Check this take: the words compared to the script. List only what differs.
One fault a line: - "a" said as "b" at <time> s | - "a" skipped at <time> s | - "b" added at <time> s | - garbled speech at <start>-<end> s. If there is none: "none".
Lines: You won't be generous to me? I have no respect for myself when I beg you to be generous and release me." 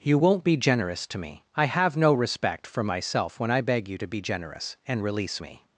none